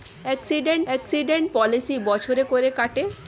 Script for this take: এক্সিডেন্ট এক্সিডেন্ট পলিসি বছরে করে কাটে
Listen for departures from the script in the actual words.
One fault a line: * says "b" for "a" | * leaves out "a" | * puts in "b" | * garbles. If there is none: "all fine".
all fine